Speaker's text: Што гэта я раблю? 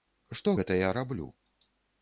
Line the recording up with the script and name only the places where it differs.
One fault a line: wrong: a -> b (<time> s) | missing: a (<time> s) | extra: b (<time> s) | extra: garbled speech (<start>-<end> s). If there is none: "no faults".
no faults